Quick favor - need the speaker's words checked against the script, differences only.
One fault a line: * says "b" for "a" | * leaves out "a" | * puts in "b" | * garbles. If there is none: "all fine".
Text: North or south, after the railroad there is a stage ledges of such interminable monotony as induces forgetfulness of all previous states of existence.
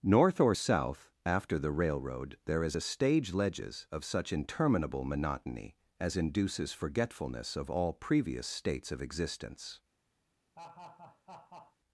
all fine